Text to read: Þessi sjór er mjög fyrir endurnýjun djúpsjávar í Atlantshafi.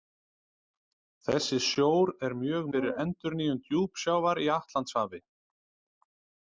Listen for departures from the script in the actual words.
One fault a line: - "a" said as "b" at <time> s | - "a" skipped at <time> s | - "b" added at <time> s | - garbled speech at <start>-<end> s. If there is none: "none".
none